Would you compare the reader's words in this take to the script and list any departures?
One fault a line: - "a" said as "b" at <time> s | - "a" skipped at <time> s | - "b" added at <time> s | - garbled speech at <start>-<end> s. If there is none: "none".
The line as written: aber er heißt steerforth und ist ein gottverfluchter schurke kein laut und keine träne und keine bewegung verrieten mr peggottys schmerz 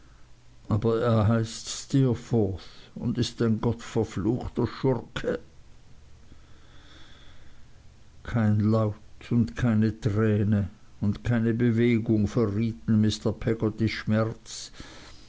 none